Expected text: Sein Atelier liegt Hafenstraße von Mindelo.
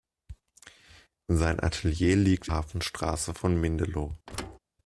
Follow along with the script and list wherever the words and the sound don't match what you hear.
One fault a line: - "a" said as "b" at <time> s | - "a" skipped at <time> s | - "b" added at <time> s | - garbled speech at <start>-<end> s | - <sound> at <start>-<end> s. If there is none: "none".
- thud at 4.3-4.6 s